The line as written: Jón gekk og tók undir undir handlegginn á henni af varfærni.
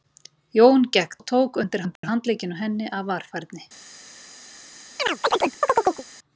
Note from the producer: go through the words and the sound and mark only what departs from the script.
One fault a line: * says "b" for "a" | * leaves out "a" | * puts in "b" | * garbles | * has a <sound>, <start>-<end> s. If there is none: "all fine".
* has a dropout, 2.0-2.0 s
* has a chirp, 5.0-6.0 s